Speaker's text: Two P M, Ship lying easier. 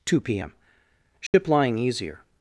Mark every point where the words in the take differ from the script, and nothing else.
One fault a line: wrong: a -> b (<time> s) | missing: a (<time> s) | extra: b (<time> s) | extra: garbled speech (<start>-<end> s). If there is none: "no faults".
no faults